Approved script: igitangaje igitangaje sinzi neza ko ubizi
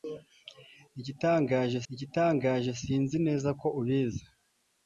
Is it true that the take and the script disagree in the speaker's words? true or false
false